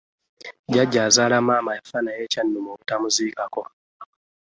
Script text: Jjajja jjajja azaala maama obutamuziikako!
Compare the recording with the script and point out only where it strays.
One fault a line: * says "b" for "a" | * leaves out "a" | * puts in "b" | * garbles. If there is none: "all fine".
* leaves out "jjajja"
* puts in "yafa naye kyannuma"